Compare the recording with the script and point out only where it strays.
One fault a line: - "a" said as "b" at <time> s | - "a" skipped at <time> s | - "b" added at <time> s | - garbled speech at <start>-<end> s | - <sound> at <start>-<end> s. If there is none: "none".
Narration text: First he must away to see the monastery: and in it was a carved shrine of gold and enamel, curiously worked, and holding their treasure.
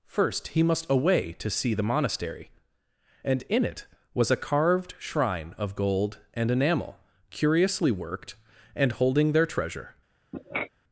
- sniff at 10.3-10.7 s